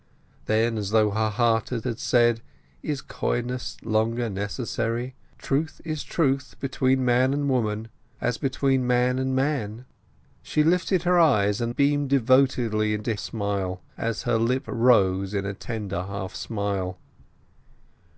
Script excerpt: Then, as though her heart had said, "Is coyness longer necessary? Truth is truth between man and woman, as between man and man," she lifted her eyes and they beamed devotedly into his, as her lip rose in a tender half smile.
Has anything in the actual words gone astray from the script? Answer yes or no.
yes